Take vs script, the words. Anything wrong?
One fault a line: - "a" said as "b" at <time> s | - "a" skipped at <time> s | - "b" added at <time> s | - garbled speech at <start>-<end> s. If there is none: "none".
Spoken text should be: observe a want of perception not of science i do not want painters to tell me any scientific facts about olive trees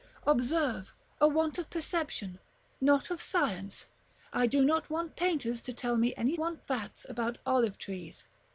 - "scientific" said as "want" at 6.4 s